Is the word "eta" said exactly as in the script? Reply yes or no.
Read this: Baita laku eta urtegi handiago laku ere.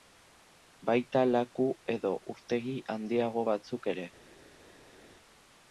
no